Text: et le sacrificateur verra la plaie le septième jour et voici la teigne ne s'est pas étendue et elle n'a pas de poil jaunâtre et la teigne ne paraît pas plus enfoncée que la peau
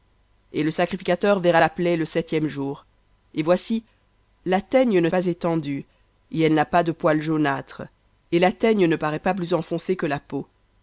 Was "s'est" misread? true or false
true